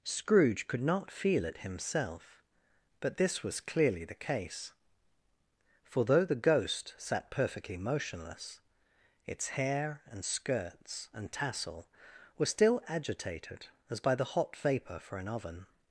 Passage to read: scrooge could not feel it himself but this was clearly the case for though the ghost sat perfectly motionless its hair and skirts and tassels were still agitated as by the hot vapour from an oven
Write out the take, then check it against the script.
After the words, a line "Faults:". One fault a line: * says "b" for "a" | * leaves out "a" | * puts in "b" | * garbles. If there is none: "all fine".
scrooge could not feel it himself but this was clearly the case for though the ghost sat perfectly motionless its hair and skirts and tassel were still agitated as by the hot vapour for an oven
Faults:
* says "tassel" for "tassels"
* says "for" for "from"